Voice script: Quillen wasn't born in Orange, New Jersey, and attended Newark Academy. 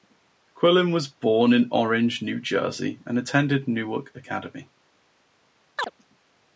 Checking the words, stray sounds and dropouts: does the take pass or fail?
fail